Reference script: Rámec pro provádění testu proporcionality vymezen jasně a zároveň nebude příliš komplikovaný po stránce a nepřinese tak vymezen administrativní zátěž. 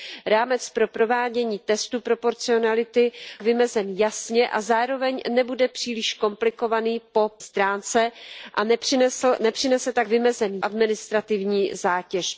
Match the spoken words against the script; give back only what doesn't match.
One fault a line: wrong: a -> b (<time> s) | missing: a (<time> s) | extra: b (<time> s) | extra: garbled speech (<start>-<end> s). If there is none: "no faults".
no faults